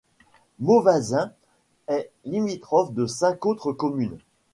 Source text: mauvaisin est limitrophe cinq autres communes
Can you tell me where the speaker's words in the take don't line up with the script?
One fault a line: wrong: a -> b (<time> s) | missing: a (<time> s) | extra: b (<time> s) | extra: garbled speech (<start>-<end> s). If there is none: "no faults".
extra: de (2.9 s)